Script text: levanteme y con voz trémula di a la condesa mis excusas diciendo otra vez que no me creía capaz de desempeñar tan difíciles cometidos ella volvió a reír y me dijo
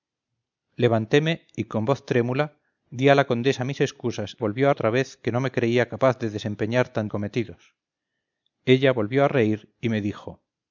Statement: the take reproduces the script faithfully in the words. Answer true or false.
false